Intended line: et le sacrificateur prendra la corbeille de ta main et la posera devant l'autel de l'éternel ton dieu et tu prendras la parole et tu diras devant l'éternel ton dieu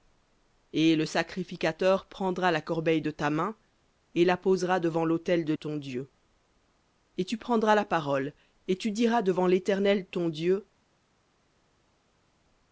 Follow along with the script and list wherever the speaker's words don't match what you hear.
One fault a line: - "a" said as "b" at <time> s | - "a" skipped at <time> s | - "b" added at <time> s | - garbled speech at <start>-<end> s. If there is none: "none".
- "l'éternel" skipped at 5.5 s